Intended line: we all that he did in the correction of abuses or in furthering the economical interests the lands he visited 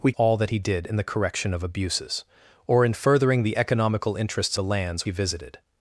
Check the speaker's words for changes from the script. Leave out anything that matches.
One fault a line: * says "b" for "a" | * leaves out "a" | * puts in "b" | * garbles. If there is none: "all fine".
all fine